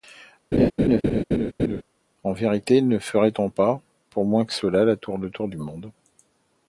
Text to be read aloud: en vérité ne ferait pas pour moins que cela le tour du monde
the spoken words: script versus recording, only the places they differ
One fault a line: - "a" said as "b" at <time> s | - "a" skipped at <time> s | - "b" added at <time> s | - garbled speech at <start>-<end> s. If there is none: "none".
- "on" added at 3.4 s